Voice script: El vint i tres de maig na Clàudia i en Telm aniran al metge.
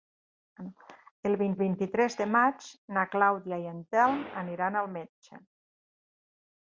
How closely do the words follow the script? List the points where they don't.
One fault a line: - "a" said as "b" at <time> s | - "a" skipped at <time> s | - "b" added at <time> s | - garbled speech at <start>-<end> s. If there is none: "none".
- "vint" added at 1.6 s